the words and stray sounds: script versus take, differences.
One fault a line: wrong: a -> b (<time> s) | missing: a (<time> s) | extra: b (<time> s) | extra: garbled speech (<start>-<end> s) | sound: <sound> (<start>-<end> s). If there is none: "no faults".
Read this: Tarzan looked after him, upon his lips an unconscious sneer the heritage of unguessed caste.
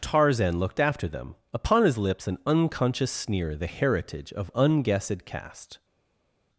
wrong: him -> them (1.1 s)